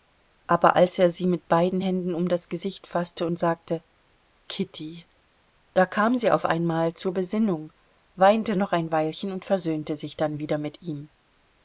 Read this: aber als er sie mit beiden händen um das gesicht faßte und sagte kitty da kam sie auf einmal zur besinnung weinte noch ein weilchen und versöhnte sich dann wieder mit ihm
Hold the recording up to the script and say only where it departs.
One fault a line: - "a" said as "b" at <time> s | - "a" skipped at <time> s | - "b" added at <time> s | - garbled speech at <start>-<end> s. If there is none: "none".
none